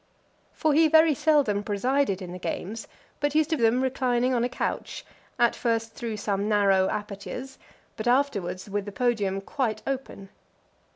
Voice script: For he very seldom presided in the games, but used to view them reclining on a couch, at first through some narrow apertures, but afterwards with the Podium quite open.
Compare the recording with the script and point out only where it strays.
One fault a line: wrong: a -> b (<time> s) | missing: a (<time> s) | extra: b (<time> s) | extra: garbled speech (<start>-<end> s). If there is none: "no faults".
missing: view (3.5 s)